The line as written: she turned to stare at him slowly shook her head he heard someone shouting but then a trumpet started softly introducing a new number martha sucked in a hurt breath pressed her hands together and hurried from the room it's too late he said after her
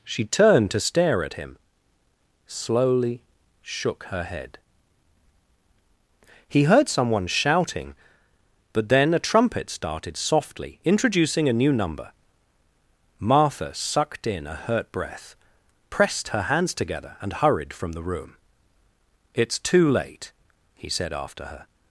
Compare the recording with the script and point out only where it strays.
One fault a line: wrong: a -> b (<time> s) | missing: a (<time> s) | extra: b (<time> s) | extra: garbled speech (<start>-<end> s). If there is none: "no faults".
no faults